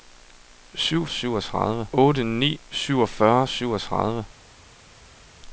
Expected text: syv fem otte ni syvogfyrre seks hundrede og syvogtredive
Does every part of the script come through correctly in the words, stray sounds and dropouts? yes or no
no